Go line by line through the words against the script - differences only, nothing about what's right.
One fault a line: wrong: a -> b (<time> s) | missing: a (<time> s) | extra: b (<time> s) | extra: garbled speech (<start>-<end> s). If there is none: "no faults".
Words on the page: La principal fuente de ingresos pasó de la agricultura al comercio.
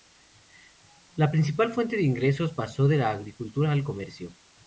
no faults